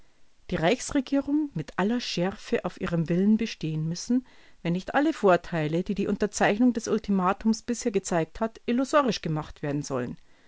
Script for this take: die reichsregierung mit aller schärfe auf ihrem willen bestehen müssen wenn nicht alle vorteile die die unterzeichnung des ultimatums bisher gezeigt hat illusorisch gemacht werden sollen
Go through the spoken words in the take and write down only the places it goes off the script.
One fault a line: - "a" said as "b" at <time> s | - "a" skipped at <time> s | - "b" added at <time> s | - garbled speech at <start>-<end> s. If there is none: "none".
none